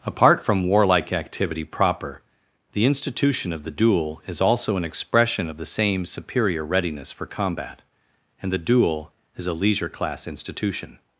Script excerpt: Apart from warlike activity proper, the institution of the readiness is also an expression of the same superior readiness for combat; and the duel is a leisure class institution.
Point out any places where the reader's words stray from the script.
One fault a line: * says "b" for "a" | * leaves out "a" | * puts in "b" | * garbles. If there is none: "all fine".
* says "duel" for "readiness"